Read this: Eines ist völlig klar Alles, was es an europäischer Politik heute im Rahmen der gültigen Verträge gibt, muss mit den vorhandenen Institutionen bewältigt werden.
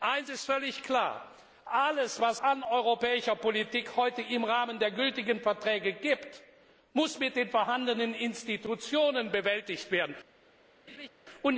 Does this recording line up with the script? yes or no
no